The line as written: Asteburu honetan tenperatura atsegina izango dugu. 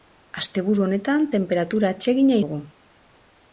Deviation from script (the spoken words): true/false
true